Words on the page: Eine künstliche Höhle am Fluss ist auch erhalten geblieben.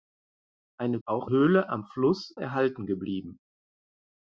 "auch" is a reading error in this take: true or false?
true